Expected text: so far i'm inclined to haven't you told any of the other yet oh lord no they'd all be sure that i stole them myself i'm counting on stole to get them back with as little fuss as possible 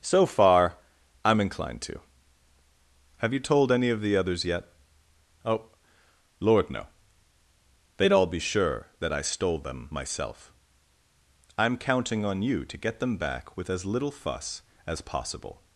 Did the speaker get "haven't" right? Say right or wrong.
wrong